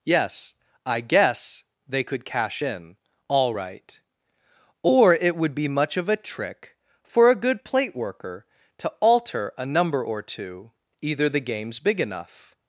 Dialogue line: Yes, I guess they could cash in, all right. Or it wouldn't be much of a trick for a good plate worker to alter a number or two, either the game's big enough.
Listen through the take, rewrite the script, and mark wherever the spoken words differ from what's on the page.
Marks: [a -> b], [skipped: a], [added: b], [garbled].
Yes, I guess they could cash in, all right. Or it [wouldn't -> would] be much of a trick for a good plate worker to alter a number or two, either the game's big enough.